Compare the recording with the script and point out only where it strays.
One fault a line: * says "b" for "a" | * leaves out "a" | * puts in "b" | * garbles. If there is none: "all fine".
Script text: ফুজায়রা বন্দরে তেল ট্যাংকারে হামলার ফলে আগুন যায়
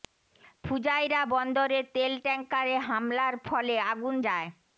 all fine